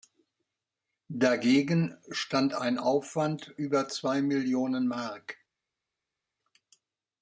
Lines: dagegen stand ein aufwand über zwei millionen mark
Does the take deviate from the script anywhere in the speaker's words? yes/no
no